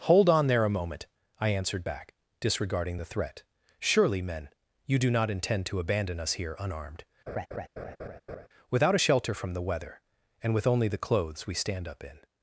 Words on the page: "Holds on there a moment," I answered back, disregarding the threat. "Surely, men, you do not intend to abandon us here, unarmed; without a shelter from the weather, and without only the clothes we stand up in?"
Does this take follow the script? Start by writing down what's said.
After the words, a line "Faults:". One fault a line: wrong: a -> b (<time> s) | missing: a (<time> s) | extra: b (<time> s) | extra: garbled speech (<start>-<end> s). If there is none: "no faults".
"Hold on there a moment," I answered back, disregarding the threat. "Surely, men, you do not intend to abandon us here, unarmed; without a shelter from the weather, and with only the clothes we stand up in?"
Faults:
wrong: Holds -> Hold (0.1 s)
wrong: without -> with (10.5 s)